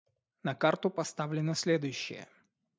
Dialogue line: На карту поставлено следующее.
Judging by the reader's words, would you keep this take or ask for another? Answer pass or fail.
pass